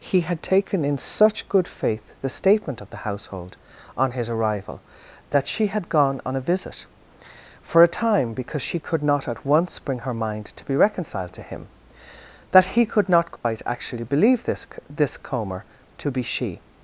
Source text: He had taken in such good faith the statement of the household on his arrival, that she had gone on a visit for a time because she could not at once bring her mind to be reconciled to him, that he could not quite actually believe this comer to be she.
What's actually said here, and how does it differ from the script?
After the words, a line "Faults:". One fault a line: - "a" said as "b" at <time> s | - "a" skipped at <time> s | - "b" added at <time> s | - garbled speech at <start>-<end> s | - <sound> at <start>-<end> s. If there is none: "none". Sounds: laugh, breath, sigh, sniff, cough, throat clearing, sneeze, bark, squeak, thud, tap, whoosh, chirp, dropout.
He had taken in such good faith the statement of the household on his arrival, that she had gone on a visit for a time because she could not at once bring her mind to be reconciled to him, that he could not quite actually believe this this comer to be she.
Faults:
- dropout at 13.4-13.4 s
- "this" added at 14.9 s